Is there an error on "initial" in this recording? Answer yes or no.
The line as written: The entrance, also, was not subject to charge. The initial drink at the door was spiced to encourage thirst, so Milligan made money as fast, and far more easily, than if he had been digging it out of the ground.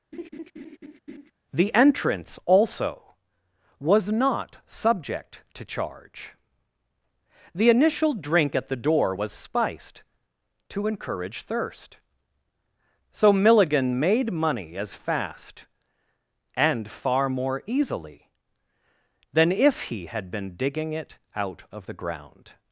no